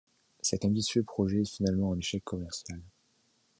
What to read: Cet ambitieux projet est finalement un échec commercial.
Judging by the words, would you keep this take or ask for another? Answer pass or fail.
pass